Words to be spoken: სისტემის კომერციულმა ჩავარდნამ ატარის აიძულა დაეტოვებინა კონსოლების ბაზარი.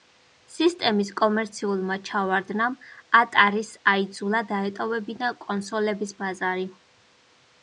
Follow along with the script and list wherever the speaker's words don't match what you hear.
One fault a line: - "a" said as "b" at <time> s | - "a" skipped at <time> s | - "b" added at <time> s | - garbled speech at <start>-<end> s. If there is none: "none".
none